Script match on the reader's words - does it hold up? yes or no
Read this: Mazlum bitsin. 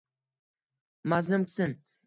yes